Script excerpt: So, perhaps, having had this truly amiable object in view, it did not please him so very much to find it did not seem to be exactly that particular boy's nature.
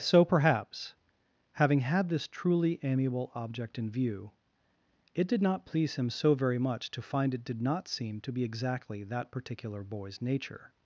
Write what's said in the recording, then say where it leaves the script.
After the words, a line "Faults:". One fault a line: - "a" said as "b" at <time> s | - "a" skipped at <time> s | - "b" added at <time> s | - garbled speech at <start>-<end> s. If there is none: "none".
So, perhaps, having had this truly amiable object in view, it did not please him so very much to find it did not seem to be exactly that particular boy's nature.
Faults:
none